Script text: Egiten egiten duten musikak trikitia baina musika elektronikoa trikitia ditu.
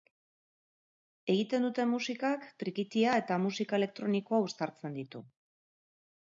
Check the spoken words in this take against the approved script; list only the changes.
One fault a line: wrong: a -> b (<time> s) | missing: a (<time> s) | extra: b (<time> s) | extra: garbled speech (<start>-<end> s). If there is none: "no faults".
missing: egiten (1.7 s)
wrong: baina -> eta (3.2 s)
wrong: trikitia -> uztartzen (4.5 s)